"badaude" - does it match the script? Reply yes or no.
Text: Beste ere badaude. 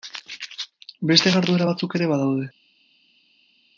yes